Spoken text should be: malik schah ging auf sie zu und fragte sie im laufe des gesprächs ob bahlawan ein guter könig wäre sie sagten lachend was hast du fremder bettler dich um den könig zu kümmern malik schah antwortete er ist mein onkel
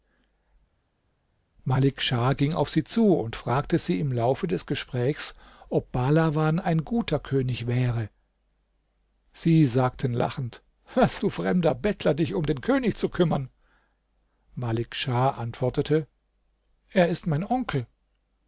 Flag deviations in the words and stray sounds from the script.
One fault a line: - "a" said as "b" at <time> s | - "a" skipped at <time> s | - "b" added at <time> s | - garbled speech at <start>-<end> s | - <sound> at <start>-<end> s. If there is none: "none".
- "hast" skipped at 11.2 s